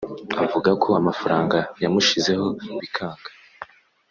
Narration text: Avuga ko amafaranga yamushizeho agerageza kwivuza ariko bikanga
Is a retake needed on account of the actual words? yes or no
yes